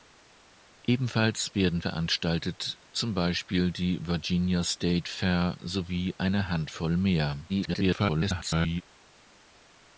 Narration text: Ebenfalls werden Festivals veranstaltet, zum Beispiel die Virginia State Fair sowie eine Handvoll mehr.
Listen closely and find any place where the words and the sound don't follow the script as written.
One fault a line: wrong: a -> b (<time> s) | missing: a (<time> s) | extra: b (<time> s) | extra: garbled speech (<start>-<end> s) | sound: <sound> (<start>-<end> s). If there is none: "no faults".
missing: Festivals (1.8 s)
extra: garbled speech (7.5-8.8 s)